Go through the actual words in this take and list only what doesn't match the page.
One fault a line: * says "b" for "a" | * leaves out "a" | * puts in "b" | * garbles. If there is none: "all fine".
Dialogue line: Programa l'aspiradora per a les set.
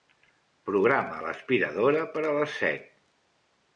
all fine